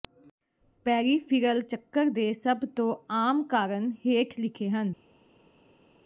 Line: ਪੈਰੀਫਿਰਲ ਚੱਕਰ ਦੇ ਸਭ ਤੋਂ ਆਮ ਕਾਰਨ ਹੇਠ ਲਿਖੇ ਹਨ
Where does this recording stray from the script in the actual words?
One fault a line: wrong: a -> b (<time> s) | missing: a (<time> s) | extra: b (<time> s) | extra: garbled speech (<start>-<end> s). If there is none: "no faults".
no faults